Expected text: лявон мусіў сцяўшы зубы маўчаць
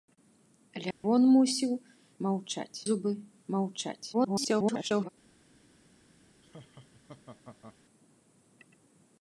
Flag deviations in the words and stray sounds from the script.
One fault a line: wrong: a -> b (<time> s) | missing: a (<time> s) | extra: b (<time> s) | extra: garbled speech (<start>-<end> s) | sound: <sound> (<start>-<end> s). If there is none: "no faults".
sound: dropout (0.9-1.0 s)
wrong: сцяўшы -> маўчаць (2.3 s)
extra: garbled speech (4.1-5.1 s)
sound: laugh (6.4-7.8 s)